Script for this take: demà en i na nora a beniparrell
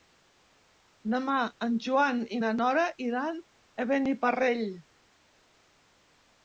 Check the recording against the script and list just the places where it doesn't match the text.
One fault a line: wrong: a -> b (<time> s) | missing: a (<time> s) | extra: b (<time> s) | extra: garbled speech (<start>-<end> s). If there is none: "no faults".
extra: joan (1.9 s)
extra: iran (3.1 s)